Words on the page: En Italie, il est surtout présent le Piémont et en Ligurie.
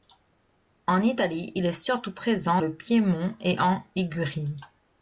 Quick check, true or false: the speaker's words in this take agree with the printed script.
true